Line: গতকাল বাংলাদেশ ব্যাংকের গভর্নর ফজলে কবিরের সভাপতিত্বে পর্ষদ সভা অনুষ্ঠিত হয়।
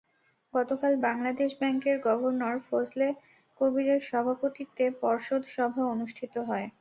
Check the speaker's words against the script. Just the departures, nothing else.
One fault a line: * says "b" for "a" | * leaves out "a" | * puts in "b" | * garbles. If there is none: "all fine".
all fine